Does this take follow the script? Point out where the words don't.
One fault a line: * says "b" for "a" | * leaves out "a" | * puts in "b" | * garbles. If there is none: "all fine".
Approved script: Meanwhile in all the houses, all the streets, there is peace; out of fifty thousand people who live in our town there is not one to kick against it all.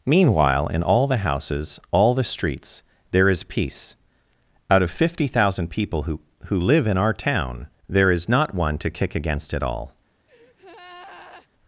* puts in "who"